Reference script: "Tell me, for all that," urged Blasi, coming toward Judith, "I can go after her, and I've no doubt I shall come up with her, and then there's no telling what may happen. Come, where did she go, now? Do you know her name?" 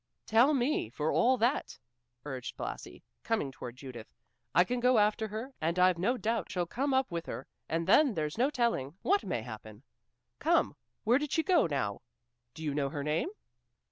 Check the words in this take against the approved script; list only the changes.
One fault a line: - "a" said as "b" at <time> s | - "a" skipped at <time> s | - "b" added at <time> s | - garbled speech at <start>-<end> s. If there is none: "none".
- "I" skipped at 6.5 s